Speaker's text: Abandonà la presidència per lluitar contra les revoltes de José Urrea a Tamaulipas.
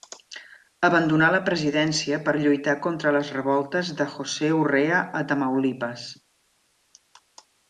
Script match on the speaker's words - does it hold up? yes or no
yes